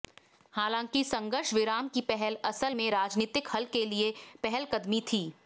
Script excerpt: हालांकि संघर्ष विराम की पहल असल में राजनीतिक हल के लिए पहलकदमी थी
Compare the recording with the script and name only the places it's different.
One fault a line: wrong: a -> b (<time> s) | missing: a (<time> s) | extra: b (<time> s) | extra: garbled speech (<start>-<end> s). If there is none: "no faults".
no faults